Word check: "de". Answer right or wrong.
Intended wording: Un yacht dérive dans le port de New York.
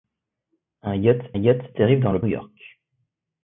wrong